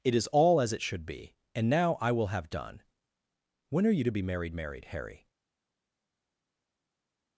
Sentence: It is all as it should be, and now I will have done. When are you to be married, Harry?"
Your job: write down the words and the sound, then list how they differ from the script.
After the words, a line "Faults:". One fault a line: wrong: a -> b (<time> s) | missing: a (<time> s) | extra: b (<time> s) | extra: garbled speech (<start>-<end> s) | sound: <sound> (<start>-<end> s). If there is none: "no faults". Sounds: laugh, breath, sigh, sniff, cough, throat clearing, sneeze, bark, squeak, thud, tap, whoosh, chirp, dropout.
It is all as it should be, and now I will have done. When are you to be married married, Harry?"
Faults:
extra: married (4.5 s)